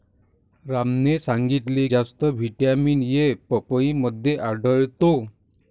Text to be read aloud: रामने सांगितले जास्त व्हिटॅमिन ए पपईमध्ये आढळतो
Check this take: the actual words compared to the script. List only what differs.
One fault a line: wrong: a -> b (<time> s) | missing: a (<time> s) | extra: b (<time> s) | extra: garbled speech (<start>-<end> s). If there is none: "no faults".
no faults